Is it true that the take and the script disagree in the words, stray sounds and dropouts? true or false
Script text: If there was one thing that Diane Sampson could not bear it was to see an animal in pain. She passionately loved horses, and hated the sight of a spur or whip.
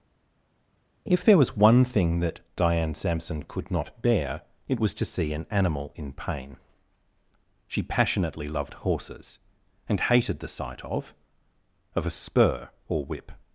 true